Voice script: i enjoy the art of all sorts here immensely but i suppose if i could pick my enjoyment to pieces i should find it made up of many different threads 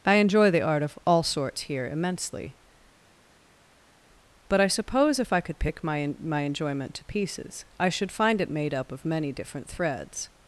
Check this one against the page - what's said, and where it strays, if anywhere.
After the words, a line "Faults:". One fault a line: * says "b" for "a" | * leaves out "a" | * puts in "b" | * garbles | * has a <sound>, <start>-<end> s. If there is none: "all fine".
i enjoy the art of all sorts here immensely but i suppose if i could pick my my enjoyment to pieces i should find it made up of many different threads
Faults:
* puts in "my"